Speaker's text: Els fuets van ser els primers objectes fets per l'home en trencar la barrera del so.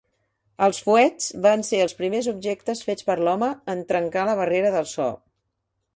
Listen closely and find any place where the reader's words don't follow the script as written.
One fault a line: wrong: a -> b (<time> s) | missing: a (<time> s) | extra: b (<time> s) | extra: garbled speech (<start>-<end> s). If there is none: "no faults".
no faults